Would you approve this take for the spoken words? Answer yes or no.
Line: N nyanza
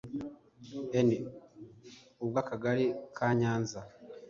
no